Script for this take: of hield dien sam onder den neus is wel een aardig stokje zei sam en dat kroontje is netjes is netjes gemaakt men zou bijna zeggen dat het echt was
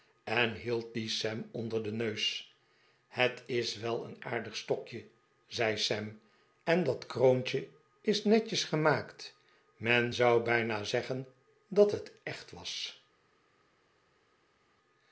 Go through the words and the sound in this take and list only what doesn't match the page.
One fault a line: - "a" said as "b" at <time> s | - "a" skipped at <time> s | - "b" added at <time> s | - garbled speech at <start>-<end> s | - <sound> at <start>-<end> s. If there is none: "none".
- "of" said as "en" at 0.2 s
- "het" added at 3.1 s
- "is netjes" skipped at 8.6 s